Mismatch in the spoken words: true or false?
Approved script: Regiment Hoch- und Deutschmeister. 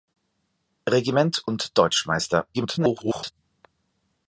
true